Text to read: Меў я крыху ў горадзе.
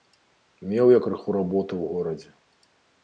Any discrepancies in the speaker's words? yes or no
yes